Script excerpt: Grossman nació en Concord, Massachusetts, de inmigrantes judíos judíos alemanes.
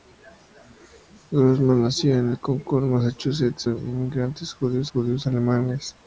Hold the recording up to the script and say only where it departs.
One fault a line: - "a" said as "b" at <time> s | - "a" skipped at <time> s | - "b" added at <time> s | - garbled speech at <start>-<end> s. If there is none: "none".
none